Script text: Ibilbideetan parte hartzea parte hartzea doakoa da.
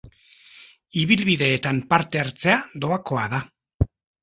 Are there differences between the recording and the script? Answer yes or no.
yes